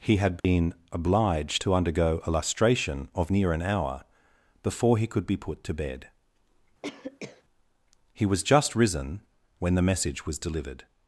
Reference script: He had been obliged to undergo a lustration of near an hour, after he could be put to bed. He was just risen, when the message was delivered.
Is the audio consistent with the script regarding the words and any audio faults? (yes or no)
no